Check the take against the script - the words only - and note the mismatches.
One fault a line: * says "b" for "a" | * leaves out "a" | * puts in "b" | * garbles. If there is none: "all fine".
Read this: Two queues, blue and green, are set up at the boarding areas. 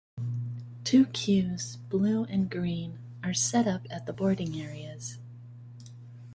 all fine